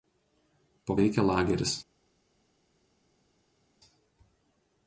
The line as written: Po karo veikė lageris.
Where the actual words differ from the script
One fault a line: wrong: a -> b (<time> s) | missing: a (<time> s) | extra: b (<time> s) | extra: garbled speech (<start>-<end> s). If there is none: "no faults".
missing: karo (0.9 s)